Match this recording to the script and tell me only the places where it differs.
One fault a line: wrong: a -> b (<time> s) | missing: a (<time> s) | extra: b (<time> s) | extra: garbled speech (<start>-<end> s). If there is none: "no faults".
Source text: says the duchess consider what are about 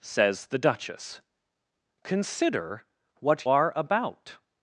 no faults